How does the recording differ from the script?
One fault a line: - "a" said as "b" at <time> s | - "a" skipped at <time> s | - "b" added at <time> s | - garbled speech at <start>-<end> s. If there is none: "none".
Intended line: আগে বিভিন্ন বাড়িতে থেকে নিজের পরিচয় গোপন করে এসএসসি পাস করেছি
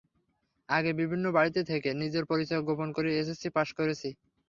none